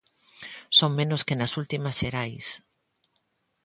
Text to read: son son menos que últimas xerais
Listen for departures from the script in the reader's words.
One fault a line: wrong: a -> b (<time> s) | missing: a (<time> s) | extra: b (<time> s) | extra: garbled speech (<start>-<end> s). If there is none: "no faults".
missing: son (0.9 s)
extra: nas (1.4 s)